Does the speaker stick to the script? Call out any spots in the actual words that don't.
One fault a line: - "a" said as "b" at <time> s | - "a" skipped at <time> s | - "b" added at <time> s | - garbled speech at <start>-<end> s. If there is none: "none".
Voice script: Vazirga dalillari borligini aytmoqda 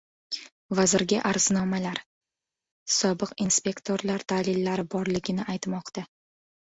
- "arznomalar Sobiq inspektorlar" added at 1.3 s